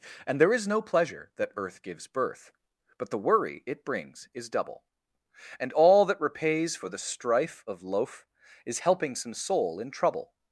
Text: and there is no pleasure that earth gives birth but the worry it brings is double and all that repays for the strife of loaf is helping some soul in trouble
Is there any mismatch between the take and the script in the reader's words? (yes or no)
no